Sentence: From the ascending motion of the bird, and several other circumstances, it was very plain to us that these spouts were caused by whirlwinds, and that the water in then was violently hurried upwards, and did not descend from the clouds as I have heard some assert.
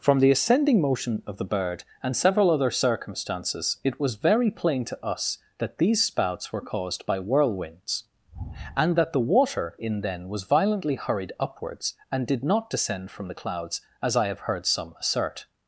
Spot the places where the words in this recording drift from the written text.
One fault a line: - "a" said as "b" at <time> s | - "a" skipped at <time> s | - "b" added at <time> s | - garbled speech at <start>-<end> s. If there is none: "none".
none